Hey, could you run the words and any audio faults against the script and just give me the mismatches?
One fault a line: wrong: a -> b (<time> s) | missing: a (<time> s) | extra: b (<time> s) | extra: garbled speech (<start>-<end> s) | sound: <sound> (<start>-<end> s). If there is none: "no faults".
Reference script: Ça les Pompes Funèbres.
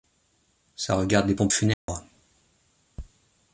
extra: regarde (0.9 s)
sound: dropout (1.7-1.9 s)